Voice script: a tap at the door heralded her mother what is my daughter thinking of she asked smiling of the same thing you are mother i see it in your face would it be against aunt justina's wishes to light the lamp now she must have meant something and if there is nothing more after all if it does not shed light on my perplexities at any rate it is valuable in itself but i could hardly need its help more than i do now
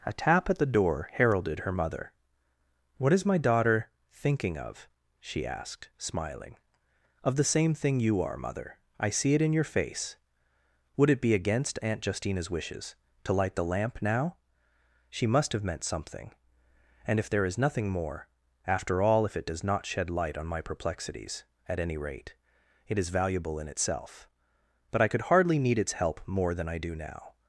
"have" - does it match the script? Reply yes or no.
yes